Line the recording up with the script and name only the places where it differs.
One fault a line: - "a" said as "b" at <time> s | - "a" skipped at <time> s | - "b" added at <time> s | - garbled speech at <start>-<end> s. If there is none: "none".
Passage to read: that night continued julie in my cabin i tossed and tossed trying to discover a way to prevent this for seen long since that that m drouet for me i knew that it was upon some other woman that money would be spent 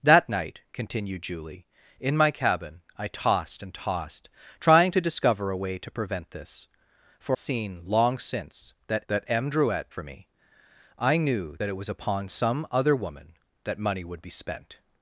none